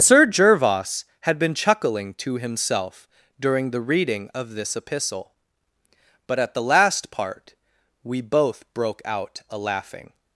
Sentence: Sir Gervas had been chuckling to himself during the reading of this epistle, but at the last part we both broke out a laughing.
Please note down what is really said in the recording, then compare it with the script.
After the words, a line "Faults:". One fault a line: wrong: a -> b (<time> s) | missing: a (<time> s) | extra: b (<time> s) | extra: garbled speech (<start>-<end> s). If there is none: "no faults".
Sir Gervas had been chuckling to himself during the reading of this epistle, but at the last part we both broke out a laughing.
Faults:
no faults